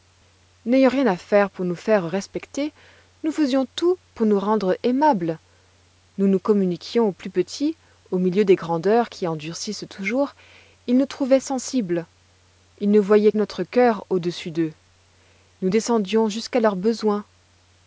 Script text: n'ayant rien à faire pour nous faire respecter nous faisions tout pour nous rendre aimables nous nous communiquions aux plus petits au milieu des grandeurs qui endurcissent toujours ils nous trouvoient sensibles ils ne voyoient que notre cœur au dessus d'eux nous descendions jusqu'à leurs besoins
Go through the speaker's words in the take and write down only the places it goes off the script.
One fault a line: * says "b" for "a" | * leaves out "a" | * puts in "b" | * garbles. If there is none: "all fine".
* leaves out "que"